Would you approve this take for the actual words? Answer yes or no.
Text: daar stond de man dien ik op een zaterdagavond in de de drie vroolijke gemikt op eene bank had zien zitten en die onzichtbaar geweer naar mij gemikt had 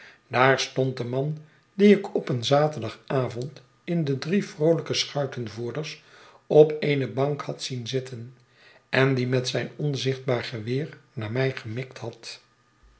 no